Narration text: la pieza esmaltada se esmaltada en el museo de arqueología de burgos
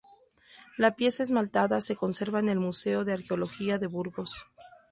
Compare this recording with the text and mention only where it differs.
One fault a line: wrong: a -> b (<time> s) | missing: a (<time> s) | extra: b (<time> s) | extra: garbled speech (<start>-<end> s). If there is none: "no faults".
wrong: esmaltada -> conserva (1.9 s)